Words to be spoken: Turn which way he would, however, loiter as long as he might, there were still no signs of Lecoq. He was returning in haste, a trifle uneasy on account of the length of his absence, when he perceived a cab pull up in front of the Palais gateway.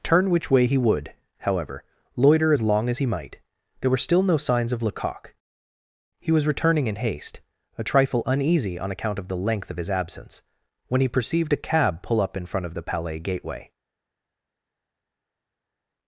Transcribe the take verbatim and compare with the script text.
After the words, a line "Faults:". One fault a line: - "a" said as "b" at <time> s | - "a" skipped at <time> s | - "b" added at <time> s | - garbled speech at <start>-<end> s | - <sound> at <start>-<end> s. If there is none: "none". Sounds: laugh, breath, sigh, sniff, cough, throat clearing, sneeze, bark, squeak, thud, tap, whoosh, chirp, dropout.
Turn which way he would, however, loiter as long as he might, there were still no signs of Lecoq. He was returning in haste, a trifle uneasy on account of the length of his absence, when he perceived a cab pull up in front of the Palais gateway.
Faults:
none